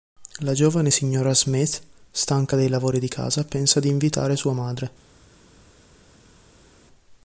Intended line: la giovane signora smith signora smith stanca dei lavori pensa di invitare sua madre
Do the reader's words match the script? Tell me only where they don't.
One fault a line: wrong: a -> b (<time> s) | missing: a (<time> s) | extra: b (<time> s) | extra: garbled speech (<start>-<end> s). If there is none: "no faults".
missing: signora smith (1.8 s)
extra: di casa (3.0 s)